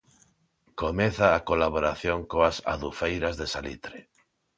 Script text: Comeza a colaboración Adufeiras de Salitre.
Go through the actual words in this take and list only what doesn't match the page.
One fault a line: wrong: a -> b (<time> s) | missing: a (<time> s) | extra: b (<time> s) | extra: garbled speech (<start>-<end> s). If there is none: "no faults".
extra: coas (2.3 s)